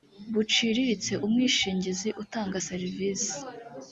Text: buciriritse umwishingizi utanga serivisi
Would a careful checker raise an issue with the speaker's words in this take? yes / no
no